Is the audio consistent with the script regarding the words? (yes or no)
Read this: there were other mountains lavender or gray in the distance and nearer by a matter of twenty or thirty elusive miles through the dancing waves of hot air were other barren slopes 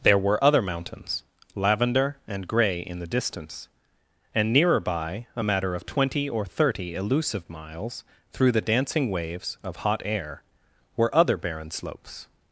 no